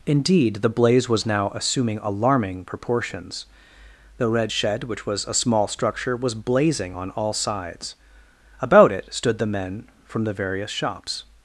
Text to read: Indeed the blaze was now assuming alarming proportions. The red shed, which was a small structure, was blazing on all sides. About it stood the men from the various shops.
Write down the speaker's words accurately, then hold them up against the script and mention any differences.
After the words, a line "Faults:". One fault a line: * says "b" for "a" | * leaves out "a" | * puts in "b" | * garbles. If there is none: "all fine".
Indeed the blaze was now assuming alarming proportions. The red shed, which was a small structure, was blazing on all sides. About it stood the men from the various shops.
Faults:
all fine